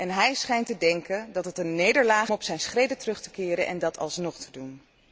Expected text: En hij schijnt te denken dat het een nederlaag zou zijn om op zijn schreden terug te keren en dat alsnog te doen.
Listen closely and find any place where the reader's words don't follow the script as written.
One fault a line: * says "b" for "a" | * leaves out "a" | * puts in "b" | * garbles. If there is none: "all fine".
* leaves out "zou zijn om"